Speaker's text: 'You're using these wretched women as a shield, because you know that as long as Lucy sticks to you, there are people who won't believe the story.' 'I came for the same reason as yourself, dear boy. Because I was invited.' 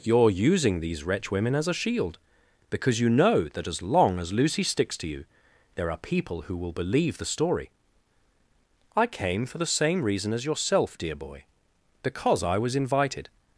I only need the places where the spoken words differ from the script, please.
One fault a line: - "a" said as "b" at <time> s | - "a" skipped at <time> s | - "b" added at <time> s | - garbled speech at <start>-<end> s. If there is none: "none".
- "wretched" said as "wretch" at 1.0 s
- "won't" said as "will" at 6.6 s